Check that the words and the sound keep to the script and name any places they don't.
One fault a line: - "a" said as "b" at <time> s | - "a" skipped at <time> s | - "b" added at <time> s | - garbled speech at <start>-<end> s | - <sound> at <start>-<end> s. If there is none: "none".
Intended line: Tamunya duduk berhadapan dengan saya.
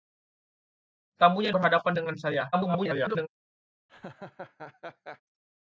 - "duduk" skipped at 1.5 s
- garbled speech at 2.5-3.3 s
- laugh at 3.9-5.2 s